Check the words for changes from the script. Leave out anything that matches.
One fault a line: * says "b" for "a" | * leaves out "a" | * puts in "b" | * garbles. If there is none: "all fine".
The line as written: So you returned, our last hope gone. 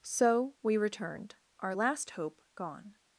* says "we" for "you"